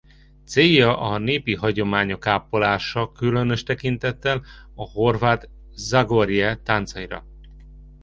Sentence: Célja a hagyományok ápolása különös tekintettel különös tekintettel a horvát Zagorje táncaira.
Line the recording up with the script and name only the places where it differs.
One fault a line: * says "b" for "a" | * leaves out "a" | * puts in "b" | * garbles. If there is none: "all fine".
* puts in "népi"
* leaves out "különös tekintettel"